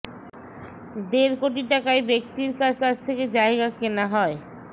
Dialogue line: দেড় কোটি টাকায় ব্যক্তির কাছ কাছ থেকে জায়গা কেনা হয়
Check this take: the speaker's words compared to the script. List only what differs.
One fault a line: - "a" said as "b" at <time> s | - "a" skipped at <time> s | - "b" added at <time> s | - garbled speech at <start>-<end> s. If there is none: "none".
none